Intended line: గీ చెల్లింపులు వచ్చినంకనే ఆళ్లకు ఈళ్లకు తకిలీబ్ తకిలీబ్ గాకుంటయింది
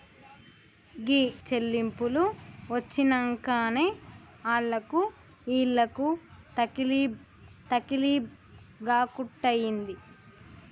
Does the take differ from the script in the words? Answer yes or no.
no